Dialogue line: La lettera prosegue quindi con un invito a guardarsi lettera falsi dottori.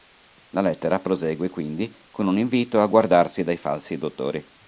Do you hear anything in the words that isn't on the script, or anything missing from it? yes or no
yes